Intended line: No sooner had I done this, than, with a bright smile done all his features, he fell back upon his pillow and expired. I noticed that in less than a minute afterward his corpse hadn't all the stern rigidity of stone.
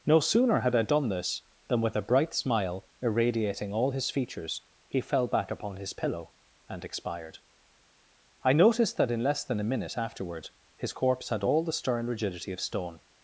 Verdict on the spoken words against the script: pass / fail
fail